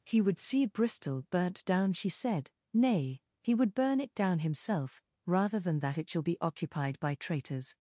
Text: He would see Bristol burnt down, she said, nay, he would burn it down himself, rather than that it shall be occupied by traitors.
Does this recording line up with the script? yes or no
yes